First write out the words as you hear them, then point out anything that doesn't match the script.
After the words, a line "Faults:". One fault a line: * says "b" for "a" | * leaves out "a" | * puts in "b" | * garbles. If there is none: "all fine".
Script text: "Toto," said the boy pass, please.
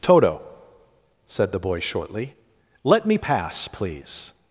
"Toto," said the boy shortly. "Let me pass, please.
Faults:
* puts in "shortly Let me"